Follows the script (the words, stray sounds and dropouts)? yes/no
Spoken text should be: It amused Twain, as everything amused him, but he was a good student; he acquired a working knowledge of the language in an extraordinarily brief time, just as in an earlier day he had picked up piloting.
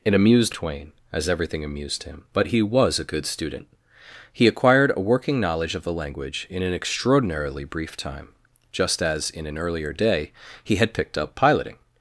yes